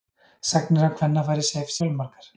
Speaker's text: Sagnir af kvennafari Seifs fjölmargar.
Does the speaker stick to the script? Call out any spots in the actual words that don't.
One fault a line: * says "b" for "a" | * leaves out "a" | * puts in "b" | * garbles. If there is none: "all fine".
all fine